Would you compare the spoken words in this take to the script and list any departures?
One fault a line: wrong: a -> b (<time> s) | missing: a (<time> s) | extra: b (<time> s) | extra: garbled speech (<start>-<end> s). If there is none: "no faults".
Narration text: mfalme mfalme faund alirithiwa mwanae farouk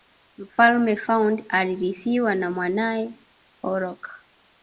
missing: mfalme (0.9 s)
extra: na (2.3 s)